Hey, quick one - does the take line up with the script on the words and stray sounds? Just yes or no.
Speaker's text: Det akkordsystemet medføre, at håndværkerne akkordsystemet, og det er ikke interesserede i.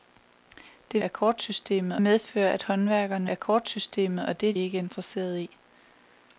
yes